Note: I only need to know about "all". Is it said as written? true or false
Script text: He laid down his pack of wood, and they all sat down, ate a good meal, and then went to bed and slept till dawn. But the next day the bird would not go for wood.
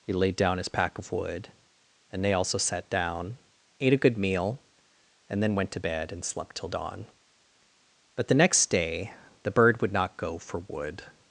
false